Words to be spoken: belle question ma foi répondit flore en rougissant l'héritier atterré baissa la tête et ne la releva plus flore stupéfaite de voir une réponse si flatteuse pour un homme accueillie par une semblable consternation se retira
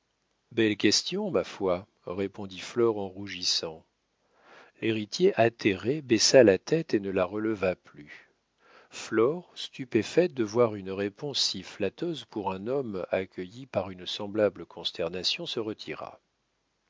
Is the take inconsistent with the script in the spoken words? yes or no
no